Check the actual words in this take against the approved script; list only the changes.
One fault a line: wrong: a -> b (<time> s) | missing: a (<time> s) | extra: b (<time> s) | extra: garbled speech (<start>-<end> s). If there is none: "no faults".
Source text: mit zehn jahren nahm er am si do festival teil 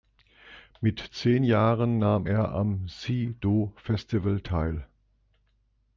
no faults